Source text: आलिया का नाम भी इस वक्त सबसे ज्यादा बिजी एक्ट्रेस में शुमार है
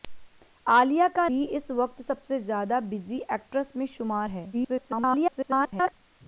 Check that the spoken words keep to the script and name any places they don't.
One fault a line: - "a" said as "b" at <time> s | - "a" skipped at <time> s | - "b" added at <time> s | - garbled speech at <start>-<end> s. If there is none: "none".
- "नाम" skipped at 1.3 s
- garbled speech at 4.5-5.9 s